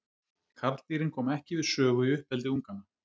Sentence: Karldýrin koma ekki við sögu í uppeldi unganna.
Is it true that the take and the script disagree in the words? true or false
false